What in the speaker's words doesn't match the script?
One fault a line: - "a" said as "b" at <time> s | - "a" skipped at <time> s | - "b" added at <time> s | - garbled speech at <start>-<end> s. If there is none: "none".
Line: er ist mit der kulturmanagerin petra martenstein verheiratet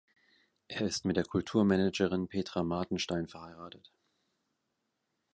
none